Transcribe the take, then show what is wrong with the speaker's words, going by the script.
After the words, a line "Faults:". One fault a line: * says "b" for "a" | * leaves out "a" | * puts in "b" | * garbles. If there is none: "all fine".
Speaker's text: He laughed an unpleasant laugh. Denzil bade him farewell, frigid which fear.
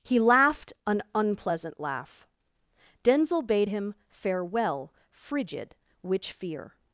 He laughed an unpleasant laugh. Denzil bade him farewell, frigid which fear.
Faults:
all fine